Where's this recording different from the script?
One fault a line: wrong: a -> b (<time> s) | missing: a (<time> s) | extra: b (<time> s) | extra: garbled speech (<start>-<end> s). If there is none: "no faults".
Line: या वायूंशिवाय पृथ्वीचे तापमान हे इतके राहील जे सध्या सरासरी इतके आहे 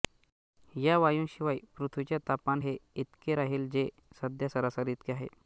no faults